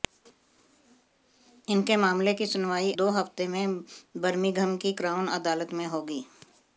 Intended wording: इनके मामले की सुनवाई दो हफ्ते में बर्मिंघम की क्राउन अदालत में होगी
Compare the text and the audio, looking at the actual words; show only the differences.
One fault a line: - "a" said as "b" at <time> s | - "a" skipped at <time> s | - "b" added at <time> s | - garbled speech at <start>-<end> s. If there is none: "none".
none